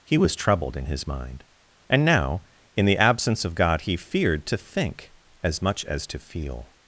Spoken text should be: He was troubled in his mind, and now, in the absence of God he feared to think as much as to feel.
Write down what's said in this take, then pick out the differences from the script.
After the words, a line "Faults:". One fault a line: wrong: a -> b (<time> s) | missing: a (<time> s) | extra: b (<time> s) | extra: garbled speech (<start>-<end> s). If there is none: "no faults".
He was troubled in his mind, and now, in the absence of God he feared to think as much as to feel.
Faults:
no faults